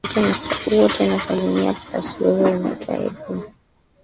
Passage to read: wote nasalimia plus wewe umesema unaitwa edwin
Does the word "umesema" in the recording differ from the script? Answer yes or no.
yes